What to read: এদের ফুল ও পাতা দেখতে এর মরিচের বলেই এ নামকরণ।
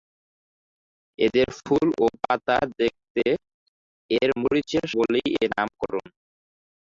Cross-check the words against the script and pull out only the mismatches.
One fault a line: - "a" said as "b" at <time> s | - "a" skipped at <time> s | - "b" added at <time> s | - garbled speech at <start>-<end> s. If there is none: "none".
none